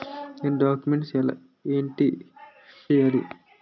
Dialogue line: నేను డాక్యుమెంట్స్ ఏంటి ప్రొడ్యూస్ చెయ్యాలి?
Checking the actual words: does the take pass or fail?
fail